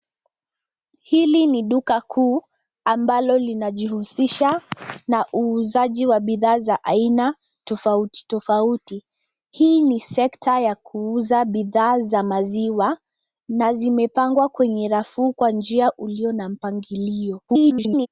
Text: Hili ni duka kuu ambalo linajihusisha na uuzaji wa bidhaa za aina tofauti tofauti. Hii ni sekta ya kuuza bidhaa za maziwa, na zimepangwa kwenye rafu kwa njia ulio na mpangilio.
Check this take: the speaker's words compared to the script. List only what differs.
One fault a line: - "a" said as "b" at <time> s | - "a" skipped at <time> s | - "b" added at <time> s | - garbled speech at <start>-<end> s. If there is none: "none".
- garbled speech at 17.5-18.1 s